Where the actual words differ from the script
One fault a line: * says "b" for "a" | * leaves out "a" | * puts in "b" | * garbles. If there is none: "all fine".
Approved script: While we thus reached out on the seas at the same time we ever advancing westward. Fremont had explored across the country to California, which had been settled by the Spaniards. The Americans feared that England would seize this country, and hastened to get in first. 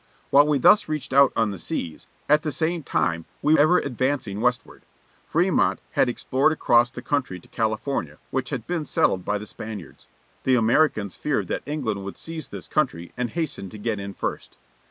all fine